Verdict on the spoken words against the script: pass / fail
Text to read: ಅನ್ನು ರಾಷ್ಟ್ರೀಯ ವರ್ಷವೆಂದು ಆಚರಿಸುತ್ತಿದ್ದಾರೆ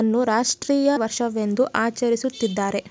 pass